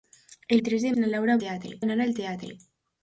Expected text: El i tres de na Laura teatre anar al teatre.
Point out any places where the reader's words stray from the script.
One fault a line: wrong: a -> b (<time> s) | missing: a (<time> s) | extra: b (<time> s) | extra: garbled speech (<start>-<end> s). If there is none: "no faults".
no faults